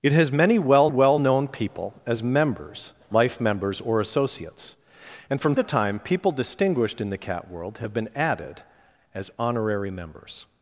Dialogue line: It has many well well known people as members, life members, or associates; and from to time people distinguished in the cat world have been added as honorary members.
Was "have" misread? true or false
false